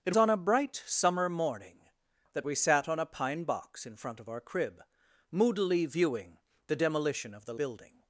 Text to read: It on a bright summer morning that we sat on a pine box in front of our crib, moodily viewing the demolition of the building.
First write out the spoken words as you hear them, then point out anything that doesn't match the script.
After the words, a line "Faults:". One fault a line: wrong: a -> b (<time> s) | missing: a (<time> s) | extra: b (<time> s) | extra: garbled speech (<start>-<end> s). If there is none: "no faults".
It on a bright summer morning that we sat on a pine box in front of our crib, moodily viewing the demolition of the building.
Faults:
no faults